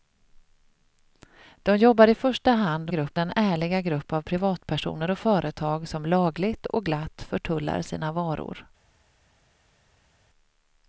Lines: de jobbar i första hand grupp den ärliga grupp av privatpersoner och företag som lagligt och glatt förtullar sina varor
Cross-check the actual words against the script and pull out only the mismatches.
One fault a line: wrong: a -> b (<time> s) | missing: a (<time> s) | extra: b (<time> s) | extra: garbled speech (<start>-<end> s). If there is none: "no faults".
no faults